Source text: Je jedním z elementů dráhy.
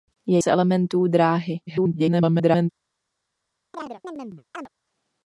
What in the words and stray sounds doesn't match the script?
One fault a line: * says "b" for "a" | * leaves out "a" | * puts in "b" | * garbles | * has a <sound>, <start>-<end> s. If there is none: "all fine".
* leaves out "jedním"
* garbles
* has a chirp, 3.7-4.7 s